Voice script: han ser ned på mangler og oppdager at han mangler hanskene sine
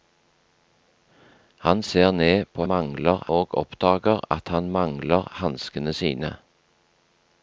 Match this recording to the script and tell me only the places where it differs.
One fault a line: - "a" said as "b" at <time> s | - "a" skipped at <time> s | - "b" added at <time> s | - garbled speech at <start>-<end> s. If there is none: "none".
none